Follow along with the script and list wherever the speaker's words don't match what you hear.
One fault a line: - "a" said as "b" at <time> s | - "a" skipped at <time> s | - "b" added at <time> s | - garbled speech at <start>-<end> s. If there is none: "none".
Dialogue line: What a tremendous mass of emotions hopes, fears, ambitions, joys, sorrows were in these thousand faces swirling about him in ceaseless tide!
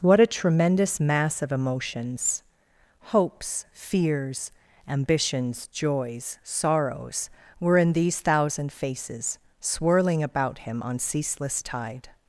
- "in" said as "on" at 10.8 s